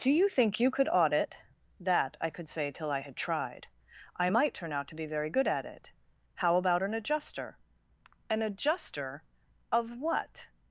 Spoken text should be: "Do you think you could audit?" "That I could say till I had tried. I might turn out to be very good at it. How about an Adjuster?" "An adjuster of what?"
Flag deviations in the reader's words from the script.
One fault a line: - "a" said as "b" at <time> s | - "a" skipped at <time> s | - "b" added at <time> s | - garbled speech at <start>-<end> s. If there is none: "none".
none